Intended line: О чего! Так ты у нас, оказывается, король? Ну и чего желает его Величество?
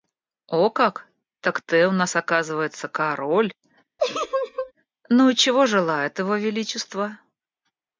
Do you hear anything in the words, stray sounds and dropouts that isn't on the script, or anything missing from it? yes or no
yes